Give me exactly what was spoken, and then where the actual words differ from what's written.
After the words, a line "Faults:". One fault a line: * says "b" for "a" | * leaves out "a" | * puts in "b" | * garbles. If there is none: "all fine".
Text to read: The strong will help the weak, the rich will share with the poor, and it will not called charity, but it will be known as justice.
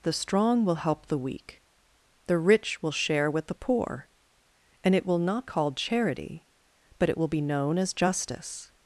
The strong will help the weak, the rich will share with the poor, and it will not called charity, but it will be known as justice.
Faults:
all fine